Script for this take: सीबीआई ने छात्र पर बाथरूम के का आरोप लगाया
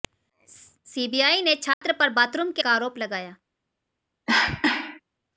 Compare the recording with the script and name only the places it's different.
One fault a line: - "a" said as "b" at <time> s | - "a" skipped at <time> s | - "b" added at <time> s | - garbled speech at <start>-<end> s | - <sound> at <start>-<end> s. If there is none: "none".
- dropout at 1.7-1.8 s
- cough at 4.3-5.0 s